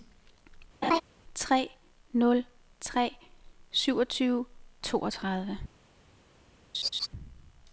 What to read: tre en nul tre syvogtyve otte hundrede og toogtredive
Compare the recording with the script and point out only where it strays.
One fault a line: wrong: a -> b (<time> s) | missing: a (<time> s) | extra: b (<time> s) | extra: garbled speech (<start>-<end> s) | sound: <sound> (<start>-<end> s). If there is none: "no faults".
sound: laugh (0.8-1.0 s)
missing: en (1.7 s)
missing: otte hundrede og (4.4 s)
sound: laugh (6.7-7.1 s)